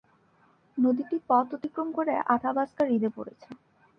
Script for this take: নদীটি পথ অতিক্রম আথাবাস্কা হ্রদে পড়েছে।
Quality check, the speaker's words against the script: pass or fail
fail